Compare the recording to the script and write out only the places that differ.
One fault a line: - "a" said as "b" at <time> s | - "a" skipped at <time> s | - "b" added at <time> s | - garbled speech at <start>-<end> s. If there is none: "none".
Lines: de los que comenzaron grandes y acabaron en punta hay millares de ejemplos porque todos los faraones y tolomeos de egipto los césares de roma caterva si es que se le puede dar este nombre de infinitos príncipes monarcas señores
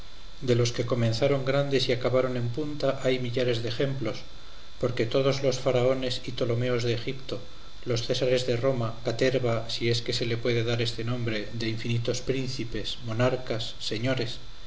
none